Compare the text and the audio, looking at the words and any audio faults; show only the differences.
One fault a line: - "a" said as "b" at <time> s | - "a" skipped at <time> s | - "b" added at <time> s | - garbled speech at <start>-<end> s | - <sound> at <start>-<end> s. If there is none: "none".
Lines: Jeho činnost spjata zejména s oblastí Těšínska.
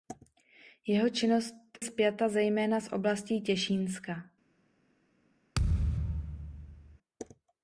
- thud at 5.5-7.0 s